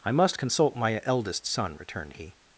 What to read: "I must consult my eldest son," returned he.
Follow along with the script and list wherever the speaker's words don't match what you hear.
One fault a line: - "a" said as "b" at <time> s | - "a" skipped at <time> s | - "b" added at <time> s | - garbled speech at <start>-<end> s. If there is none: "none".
none